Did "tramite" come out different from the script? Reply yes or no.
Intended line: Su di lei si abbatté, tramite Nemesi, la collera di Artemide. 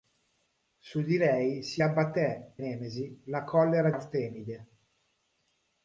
yes